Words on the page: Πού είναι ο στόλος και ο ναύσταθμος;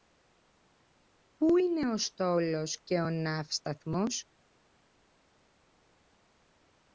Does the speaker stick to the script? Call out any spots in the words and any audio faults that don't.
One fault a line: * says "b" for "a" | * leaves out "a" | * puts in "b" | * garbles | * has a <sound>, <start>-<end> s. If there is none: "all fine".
all fine